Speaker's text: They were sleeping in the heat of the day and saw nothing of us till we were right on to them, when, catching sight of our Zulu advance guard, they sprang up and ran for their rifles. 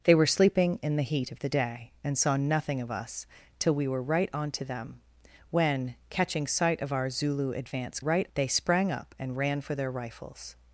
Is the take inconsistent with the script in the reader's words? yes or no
yes